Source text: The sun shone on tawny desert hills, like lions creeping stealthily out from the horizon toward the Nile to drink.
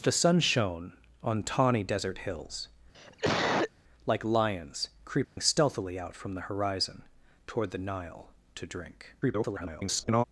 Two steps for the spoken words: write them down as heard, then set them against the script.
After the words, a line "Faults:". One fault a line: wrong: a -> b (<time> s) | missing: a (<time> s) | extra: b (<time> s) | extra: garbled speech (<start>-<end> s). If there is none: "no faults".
The sun shone on tawny desert hills, like lions creeping stealthily out from the horizon toward the Nile to drink. [garbled]
Faults:
extra: garbled speech (9.2-10.2 s)